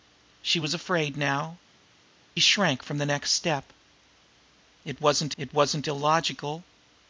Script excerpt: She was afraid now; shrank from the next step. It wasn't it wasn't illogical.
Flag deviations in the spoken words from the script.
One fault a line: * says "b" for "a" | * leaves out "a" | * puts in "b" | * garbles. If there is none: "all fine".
all fine